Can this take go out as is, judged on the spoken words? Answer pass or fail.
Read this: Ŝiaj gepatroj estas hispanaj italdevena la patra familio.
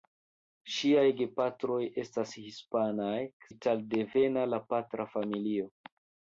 pass